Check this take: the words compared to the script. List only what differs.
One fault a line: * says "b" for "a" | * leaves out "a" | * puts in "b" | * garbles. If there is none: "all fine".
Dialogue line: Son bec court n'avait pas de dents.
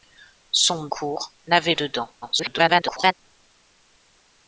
* leaves out "bec"
* leaves out "pas"
* garbles